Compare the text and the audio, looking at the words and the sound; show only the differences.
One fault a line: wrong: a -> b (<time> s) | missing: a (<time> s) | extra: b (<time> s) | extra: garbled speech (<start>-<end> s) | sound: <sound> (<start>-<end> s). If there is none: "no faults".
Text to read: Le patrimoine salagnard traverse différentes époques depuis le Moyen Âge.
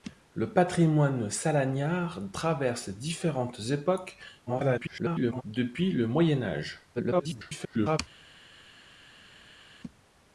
extra: garbled speech (4.5-5.4 s)
extra: garbled speech (7.0-8.0 s)